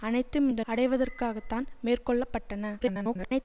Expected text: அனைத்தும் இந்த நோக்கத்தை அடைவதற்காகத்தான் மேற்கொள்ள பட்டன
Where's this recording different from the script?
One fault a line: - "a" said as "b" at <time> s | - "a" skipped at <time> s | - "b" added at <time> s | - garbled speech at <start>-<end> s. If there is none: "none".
- "நோக்கத்தை" skipped at 0.6 s
- garbled speech at 2.8-3.4 s